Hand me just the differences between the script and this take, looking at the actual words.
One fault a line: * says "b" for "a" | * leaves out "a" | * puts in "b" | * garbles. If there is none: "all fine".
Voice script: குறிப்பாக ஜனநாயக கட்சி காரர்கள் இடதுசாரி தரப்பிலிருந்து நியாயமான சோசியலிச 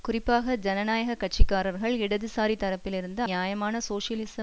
all fine